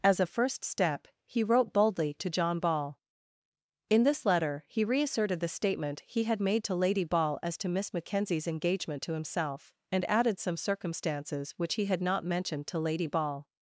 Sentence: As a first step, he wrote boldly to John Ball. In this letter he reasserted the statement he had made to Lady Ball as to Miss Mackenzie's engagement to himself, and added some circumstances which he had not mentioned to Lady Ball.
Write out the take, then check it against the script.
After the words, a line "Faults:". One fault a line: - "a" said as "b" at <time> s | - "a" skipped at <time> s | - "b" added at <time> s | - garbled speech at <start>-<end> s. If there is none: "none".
As a first step, he wrote boldly to John Ball. In this letter he reasserted the statement he had made to Lady Ball as to Miss Mackenzie's engagement to himself, and added some circumstances which he had not mentioned to Lady Ball.
Faults:
none